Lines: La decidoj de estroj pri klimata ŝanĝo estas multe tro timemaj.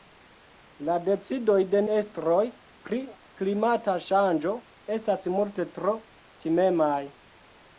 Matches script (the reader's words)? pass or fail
pass